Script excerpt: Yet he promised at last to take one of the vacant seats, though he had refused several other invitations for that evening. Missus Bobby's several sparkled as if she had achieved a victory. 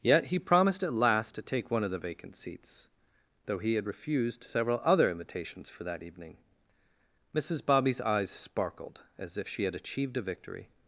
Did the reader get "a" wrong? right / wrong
right